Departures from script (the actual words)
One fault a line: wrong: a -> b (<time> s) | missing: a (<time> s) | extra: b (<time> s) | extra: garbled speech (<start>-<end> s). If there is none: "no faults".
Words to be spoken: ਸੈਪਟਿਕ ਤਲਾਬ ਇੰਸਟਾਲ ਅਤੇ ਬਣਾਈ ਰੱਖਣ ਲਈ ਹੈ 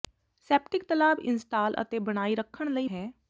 no faults